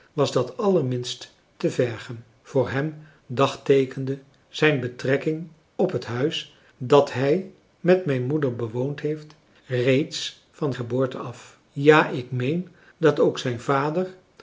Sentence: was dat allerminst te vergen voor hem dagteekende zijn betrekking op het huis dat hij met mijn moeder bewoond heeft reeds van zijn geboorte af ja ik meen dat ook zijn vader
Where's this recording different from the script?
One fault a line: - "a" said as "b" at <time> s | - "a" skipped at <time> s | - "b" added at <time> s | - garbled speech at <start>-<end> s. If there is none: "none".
- "zijn" skipped at 10.7 s